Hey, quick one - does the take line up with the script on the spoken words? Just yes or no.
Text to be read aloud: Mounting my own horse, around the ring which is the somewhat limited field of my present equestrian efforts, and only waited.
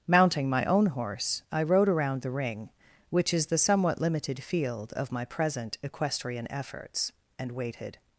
no